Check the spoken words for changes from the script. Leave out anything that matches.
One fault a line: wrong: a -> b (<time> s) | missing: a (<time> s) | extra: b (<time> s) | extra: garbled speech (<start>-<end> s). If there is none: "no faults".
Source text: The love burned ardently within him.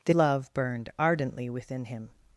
no faults